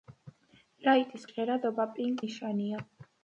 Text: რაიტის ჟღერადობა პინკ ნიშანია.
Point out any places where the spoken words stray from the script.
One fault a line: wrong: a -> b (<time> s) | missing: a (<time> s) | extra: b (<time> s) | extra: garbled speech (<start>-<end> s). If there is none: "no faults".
no faults